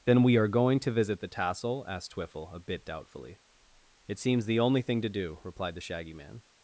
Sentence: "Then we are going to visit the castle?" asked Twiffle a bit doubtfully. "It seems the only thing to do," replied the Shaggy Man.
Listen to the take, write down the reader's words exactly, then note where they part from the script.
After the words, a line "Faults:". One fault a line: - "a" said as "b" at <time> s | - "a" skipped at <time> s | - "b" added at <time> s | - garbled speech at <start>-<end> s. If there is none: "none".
"Then we are going to visit the tassel?" asked Twiffle a bit doubtfully. "It seems the only thing to do," replied the Shaggy Man.
Faults:
- "castle" said as "tassel" at 1.3 s